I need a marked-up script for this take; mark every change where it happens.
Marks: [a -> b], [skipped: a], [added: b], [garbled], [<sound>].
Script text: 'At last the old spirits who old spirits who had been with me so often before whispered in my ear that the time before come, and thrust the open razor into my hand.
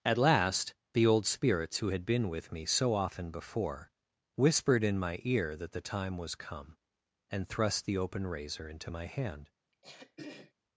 'At last the old spirits who [skipped: old spirits who] had been with me so often before whispered in my ear that the time [before -> was] come, and thrust the open razor into my hand. [throat clearing]